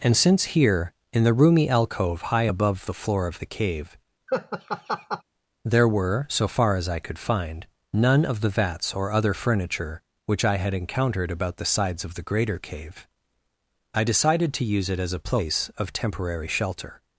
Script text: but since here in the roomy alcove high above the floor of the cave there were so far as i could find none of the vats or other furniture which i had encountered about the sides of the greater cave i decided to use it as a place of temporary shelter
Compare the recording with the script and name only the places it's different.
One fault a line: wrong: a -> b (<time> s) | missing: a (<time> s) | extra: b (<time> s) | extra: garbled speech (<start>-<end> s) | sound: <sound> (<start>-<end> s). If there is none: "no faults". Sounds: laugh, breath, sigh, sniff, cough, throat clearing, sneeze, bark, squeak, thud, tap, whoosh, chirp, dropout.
wrong: but -> and (0.0 s)
sound: laugh (4.3-5.2 s)